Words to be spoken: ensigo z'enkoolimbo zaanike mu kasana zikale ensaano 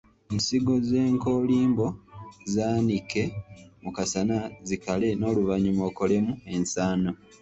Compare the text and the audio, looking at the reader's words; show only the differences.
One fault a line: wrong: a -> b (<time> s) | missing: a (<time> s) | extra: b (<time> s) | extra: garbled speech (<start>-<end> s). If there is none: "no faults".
extra: n'oluvannyuma okolemu (5.2 s)